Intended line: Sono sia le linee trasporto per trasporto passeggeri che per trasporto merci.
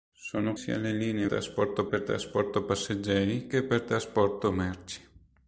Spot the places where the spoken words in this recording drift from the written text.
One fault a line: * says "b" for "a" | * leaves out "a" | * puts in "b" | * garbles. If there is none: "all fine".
all fine